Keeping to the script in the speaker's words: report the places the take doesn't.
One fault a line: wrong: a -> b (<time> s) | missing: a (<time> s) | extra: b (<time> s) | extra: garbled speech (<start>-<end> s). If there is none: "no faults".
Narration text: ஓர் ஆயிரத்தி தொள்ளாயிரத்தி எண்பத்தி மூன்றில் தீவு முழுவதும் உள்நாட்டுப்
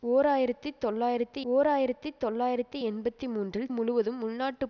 extra: ஓர் ஆயிரத்தி தொள்ளாயிரத்தி (1.4 s)
missing: தீவு (3.7 s)